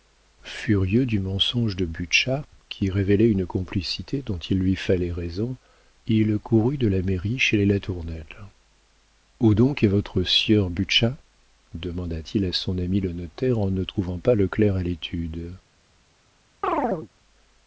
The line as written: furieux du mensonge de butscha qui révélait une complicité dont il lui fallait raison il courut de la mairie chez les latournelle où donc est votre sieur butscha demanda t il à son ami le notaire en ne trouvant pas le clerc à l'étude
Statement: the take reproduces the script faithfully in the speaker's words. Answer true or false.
true